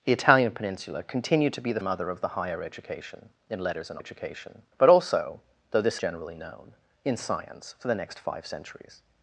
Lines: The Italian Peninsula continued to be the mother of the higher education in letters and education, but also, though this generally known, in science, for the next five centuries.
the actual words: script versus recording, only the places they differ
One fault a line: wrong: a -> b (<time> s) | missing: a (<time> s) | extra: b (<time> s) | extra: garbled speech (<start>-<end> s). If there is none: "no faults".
no faults